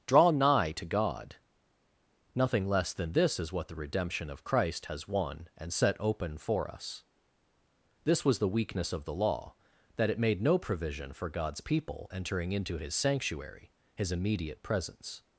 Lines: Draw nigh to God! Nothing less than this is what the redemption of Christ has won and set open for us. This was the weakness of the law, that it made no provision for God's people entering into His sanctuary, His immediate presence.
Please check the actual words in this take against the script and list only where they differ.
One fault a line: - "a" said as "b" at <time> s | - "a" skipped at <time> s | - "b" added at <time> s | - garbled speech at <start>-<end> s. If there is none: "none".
none